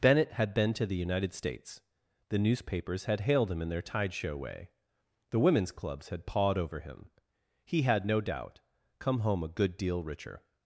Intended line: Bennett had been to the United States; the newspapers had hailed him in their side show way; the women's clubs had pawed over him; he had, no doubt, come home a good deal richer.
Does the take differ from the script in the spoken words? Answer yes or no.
yes